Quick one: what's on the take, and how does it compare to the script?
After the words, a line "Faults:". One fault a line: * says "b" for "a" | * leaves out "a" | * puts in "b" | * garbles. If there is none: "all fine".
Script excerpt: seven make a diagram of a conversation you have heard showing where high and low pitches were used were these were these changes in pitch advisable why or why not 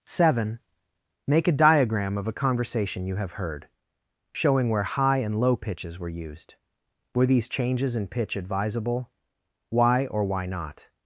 seven make a diagram of a conversation you have heard showing where high and low pitches were used were these changes in pitch advisable why or why not
Faults:
* leaves out "were these"